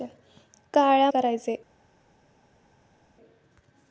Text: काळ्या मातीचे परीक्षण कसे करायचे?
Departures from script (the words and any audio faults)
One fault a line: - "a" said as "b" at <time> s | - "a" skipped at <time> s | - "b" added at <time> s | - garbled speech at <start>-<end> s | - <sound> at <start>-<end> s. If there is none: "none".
- "मातीचे परीक्षण कसे" skipped at 1.1 s